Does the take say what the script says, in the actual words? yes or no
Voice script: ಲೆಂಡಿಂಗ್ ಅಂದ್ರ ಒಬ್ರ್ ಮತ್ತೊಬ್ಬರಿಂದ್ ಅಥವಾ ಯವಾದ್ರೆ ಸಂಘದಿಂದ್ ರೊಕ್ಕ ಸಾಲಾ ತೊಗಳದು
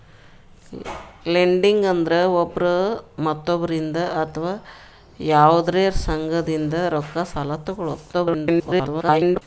no